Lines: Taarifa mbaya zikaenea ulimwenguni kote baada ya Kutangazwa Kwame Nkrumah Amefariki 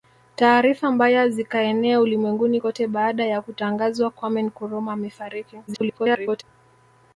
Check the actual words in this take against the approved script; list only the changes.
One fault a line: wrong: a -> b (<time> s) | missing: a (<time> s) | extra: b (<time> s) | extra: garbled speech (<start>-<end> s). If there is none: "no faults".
extra: garbled speech (5.7-6.4 s)